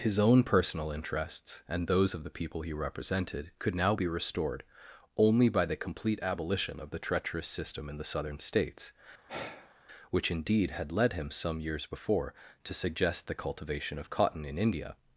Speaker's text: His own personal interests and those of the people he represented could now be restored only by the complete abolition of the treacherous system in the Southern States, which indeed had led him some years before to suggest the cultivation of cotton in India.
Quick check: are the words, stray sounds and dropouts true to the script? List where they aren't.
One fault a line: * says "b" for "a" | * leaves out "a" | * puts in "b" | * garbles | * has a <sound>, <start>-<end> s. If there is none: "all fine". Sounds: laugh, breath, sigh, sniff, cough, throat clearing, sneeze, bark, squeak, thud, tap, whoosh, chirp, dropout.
* has a sigh, 9.3-9.8 s